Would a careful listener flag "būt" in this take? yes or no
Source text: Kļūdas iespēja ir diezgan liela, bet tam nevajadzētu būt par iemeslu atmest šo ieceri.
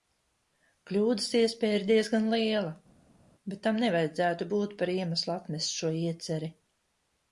no